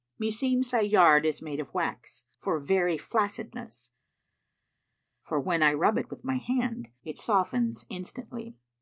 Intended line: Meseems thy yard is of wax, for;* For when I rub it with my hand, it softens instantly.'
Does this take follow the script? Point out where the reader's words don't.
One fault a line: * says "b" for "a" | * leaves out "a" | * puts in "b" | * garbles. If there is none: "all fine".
* puts in "made"
* puts in "very flaccidness"